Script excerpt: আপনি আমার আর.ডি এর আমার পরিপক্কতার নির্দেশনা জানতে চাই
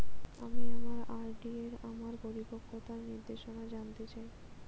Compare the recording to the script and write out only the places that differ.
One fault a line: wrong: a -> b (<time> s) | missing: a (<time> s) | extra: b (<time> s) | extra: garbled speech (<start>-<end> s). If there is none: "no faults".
wrong: আপনি -> আমি (0.4 s)